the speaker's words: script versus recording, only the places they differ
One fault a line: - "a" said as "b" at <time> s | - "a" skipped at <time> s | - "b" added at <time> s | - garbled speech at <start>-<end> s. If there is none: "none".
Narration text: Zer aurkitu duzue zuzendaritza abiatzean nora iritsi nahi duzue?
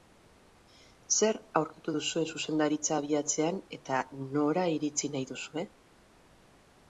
- "eta" added at 3.8 s